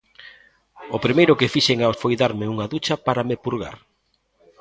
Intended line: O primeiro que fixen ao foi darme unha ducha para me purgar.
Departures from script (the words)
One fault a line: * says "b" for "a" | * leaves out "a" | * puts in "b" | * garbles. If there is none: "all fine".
all fine